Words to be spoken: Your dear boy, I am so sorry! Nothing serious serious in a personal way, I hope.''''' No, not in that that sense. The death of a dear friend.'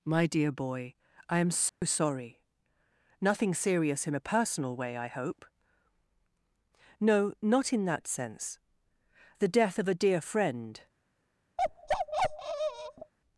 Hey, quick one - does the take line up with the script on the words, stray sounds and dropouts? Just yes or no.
no